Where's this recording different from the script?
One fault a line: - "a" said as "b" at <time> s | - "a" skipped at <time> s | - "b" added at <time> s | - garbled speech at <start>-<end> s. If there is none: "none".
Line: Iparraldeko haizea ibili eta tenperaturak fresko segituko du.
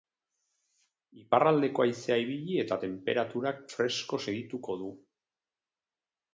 none